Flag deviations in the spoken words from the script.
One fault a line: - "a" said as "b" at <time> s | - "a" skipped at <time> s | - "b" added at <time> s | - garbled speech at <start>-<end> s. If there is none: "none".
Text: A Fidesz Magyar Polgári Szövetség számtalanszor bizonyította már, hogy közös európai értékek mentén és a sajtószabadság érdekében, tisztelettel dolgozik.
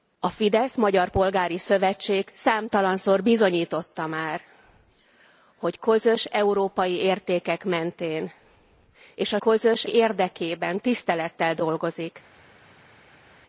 - "sajtószabadság" said as "közös" at 9.4 s